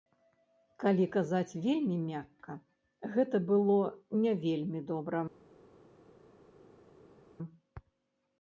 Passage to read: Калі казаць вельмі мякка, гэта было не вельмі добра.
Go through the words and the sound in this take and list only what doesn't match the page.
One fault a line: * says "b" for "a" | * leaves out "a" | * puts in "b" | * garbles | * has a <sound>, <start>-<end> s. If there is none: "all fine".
all fine